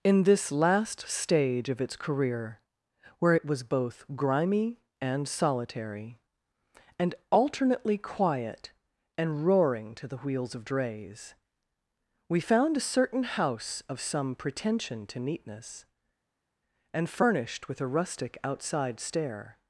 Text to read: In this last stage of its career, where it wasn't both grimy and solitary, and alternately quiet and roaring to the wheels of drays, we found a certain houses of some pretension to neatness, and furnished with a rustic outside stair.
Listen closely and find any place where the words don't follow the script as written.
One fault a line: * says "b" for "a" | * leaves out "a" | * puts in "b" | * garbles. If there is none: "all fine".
* says "was" for "wasn't"
* says "house" for "houses"